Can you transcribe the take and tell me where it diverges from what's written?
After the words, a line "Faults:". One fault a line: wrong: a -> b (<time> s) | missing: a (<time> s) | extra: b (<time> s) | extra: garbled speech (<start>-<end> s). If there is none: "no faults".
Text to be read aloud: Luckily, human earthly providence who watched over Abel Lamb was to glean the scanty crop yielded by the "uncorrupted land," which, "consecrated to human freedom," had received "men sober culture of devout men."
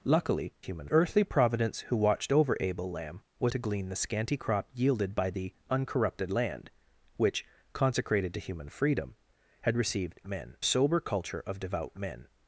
Luckily, human earthly providence who watched over Abel Lamb was to glean the scanty crop yielded by the "uncorrupted land," which, "consecrated to human freedom," had received "men sober culture of devout men."
Faults:
no faults